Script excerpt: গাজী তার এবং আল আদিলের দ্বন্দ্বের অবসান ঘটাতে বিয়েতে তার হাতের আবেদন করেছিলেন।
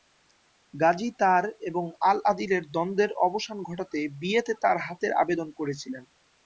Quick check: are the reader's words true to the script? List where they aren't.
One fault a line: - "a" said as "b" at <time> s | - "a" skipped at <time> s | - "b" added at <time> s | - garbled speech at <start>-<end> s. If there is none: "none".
none